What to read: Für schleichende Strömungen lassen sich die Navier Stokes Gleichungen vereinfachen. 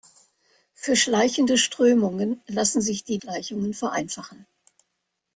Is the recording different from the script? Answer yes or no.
yes